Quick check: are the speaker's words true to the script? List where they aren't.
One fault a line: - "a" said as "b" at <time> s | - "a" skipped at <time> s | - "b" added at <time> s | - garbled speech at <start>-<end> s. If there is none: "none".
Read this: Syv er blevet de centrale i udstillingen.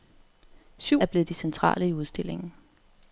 none